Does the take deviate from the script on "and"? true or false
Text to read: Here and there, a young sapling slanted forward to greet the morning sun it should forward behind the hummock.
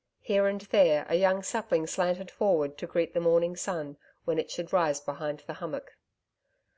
false